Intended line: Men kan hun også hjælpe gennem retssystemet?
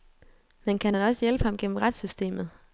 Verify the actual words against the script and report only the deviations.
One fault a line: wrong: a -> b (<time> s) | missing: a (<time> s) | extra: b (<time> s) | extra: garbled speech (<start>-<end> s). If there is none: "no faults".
wrong: hun -> han (0.9 s)
extra: ham (1.4 s)